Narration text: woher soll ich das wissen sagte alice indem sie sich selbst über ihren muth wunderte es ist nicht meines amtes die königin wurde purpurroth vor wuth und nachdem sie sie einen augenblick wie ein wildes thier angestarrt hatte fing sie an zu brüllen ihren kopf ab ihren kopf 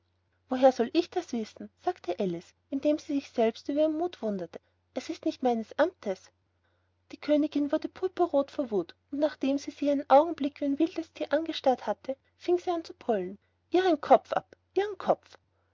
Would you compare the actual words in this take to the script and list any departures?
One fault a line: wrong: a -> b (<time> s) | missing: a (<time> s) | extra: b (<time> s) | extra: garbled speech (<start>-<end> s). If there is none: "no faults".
no faults